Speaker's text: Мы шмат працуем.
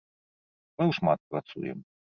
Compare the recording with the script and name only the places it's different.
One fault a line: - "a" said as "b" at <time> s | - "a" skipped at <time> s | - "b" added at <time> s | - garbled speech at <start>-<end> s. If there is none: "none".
none